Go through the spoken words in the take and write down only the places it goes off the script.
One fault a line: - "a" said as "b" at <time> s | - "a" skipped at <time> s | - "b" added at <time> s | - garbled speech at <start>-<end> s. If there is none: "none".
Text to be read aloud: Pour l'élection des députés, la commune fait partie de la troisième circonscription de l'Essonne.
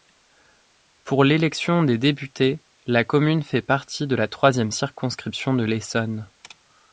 none